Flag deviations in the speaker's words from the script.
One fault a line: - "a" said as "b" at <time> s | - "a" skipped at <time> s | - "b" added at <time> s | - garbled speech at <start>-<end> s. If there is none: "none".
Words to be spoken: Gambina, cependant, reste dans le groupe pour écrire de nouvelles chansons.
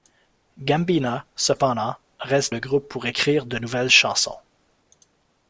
- "dans" skipped at 2.5 s